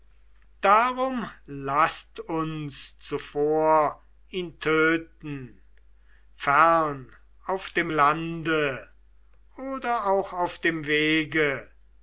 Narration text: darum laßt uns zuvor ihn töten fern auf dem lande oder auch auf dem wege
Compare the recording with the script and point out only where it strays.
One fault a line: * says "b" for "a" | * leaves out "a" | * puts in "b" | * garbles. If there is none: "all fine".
all fine